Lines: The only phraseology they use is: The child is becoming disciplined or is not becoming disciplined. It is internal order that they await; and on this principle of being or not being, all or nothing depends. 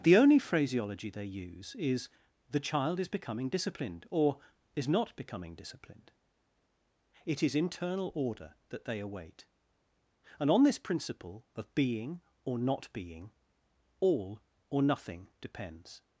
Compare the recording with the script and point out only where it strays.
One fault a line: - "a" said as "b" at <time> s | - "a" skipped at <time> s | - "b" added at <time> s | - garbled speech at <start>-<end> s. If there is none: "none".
none